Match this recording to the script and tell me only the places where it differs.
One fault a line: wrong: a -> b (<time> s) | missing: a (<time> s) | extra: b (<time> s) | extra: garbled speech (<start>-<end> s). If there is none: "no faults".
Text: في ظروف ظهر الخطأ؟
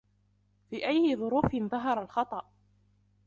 extra: أي (0.9 s)